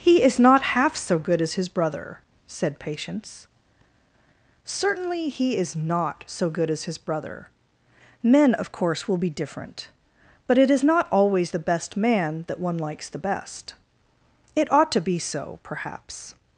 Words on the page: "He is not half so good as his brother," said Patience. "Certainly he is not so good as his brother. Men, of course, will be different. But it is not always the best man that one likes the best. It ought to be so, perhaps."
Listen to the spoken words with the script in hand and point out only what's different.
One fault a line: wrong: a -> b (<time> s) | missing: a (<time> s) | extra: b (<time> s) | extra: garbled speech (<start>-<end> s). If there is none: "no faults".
no faults